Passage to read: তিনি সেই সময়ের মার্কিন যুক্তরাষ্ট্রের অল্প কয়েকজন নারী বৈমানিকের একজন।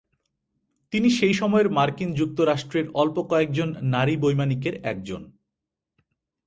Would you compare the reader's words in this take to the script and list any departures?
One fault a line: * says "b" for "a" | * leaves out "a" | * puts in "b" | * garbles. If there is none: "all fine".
all fine